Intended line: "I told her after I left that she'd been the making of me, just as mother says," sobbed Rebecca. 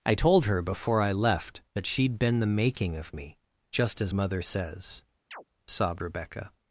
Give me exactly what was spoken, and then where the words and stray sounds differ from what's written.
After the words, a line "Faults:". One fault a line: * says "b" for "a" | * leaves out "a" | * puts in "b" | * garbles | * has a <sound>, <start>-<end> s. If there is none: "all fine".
"I told her before I left that she'd been the making of me, just as mother says," sobbed Rebecca.
Faults:
* says "before" for "after"
* has a chirp, 5.3-5.4 s